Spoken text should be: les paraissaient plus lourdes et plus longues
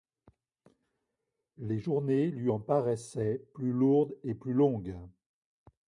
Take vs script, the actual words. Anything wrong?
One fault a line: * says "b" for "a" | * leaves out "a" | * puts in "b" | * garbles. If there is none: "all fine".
* puts in "journées lui en"